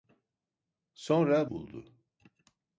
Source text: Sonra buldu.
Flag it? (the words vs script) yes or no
no